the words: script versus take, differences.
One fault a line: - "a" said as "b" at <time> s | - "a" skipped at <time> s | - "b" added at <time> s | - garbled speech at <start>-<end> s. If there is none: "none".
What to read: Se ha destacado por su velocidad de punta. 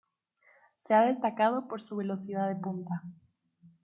none